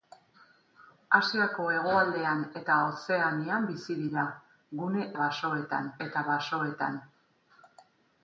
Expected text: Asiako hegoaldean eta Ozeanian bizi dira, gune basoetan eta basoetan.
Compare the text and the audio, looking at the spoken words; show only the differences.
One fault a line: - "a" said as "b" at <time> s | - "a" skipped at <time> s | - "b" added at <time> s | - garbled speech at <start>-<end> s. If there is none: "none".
none